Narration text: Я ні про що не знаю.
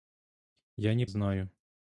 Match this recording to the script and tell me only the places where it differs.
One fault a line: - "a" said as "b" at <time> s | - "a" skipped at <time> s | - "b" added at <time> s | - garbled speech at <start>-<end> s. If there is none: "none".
- "про що не" skipped at 1.1 s